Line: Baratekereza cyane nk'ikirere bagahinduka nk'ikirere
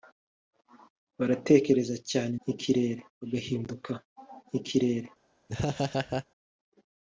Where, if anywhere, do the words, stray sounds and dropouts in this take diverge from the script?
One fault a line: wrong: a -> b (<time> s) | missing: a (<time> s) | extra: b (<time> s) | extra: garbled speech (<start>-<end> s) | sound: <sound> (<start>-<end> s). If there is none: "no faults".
sound: laugh (5.5-6.3 s)